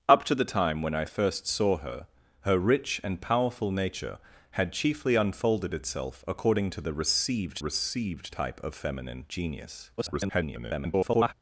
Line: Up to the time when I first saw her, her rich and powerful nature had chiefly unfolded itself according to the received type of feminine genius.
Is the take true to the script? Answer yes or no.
no